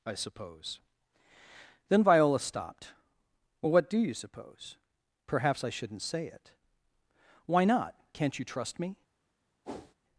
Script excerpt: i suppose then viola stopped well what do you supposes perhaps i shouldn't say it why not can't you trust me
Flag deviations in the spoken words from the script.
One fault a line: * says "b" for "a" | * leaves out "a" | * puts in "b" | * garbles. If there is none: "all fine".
* says "suppose" for "supposes"